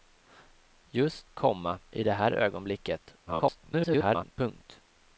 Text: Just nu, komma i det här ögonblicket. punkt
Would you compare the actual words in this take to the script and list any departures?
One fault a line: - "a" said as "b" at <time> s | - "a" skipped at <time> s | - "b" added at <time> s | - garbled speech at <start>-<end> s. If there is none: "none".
- "nu" skipped at 1.3 s
- garbled speech at 3.3-4.3 s